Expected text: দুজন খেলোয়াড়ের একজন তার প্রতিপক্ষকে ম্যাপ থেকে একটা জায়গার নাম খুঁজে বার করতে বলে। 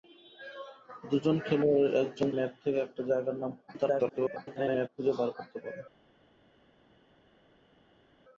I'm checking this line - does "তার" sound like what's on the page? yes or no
no